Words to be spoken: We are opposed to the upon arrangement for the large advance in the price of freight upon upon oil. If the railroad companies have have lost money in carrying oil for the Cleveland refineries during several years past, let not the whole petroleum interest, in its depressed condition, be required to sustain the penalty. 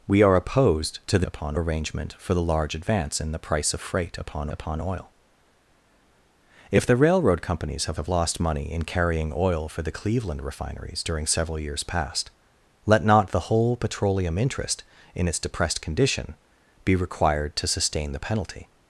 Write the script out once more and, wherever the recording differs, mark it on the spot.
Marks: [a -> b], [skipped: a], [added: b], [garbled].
We are opposed to the upon arrangement for the large advance in the price of freight upon upon oil. If the railroad companies have have lost money in carrying oil for the Cleveland refineries during several years past, let not the whole petroleum interest, in its depressed condition, be required to sustain the penalty.